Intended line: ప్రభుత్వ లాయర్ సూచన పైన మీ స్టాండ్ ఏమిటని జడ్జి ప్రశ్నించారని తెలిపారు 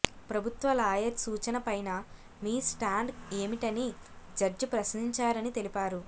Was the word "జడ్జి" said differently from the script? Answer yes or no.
no